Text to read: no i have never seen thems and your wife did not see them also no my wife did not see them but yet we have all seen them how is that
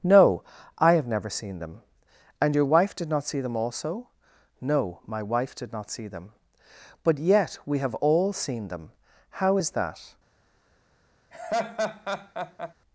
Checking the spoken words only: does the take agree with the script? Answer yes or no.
no